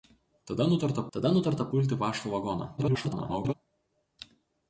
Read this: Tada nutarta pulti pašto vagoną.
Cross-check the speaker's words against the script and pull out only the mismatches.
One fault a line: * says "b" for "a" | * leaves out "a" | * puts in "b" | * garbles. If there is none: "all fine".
* puts in "tada nutarta"
* garbles